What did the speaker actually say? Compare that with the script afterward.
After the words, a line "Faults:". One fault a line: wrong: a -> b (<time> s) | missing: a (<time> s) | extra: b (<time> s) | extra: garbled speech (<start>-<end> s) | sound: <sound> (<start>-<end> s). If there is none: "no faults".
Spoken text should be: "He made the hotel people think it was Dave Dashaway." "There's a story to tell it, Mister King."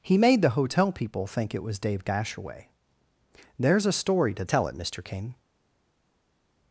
"He made the hotel people think it was Dave Dashaway." "There's a story to tell it, Mister King."
Faults:
no faults